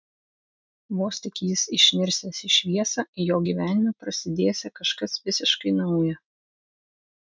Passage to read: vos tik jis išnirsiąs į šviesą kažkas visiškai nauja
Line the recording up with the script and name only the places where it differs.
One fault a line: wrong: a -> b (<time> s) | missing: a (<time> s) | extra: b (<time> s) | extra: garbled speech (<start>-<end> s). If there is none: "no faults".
extra: jo gyvenime prasidėsią (3.3 s)